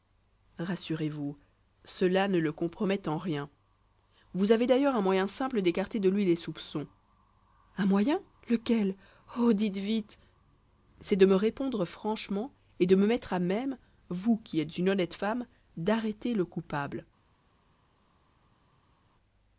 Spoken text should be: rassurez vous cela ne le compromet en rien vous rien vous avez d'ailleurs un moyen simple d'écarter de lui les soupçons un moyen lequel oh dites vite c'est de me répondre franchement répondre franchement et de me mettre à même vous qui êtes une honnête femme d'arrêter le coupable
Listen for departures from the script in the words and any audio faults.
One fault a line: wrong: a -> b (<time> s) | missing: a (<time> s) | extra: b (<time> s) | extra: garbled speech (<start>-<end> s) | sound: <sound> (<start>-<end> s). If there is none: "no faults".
missing: rien vous (4.5 s)
missing: répondre franchement (12.5 s)